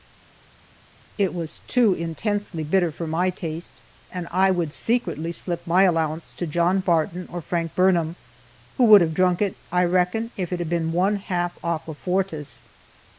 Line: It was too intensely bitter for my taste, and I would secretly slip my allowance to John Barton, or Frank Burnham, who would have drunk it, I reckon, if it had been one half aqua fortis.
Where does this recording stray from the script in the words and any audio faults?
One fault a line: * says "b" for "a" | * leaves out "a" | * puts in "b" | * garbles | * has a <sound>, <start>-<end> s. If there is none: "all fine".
all fine